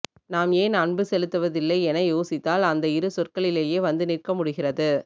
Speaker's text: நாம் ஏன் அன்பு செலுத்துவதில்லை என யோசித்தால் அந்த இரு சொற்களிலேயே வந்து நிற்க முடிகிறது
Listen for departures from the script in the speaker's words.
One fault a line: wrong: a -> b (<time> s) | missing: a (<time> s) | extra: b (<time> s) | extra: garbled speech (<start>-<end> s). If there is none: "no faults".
no faults